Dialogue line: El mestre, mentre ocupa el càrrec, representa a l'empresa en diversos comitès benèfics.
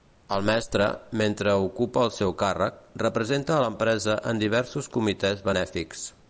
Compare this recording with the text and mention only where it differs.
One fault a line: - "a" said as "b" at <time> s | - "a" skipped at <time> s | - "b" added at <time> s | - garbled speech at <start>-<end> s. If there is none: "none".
- "seu" added at 2.1 s